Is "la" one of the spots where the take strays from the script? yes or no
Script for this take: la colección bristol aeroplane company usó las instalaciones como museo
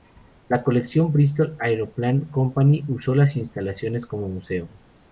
no